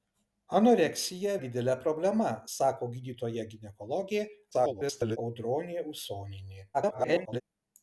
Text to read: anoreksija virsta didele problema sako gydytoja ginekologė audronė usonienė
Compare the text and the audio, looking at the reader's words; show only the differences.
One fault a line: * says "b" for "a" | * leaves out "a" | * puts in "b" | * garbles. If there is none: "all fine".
* leaves out "virsta"
* garbles
* garbles